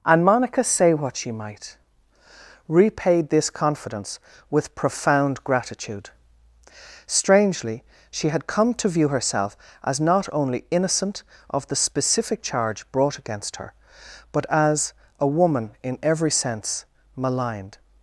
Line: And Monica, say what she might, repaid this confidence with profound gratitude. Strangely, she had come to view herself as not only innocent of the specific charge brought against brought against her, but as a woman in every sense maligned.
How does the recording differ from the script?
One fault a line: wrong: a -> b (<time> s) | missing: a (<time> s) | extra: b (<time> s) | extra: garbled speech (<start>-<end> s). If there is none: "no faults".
missing: brought against (13.6 s)